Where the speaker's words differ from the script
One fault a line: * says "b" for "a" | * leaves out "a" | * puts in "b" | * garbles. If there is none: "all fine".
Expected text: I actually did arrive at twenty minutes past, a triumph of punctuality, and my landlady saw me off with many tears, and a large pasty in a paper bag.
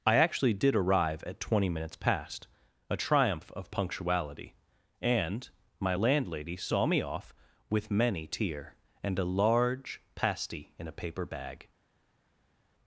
* says "tear" for "tears"